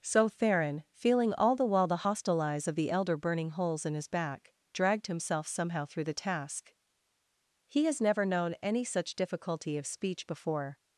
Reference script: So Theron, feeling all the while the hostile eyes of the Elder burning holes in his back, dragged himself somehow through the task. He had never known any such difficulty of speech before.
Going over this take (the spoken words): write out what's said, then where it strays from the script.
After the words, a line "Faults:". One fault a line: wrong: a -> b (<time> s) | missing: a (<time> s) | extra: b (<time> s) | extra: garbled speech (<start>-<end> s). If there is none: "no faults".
So Theron, feeling all the while the hostile eyes of the Elder burning holes in his back, dragged himself somehow through the task. He has never known any such difficulty of speech before.
Faults:
wrong: had -> has (7.8 s)